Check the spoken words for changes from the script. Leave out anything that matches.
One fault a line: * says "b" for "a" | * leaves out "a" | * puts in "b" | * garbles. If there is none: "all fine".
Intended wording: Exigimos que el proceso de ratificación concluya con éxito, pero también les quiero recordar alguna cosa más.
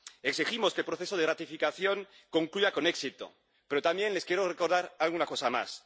all fine